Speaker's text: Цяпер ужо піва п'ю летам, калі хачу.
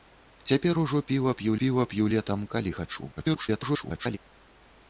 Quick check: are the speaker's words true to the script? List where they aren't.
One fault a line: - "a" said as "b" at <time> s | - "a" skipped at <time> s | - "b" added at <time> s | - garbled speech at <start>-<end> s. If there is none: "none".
- "піва п'ю" added at 1.6 s
- garbled speech at 3.2-4.2 s